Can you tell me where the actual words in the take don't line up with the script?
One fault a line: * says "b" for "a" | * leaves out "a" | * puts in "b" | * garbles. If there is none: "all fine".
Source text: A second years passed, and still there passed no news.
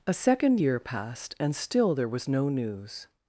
* says "year" for "years"
* says "was" for "passed"